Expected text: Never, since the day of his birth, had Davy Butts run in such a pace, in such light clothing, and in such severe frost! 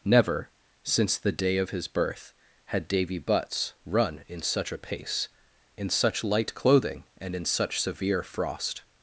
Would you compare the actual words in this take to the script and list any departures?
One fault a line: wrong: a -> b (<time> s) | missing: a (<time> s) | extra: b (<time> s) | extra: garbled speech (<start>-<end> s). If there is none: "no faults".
no faults